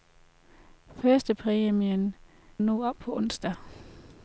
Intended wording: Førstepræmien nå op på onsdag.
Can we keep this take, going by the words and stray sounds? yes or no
yes